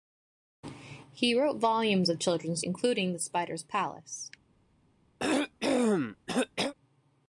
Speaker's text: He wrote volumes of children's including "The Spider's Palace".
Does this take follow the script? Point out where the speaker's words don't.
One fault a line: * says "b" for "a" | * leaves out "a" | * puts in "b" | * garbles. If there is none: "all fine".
all fine